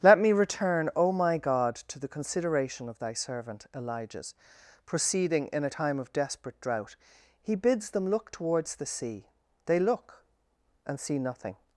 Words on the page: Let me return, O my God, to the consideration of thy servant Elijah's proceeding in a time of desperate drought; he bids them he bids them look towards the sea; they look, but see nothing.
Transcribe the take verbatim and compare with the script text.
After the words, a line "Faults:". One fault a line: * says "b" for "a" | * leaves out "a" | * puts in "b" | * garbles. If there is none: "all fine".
Let me return, O my God, to the consideration of thy servant Elijah's proceeding in a time of desperate drought; he bids them look towards the sea; they look, and see nothing.
Faults:
* leaves out "he bids them"
* says "and" for "but"